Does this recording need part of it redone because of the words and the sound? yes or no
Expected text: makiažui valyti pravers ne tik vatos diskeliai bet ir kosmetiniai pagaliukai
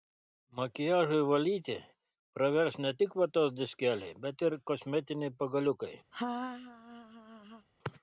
yes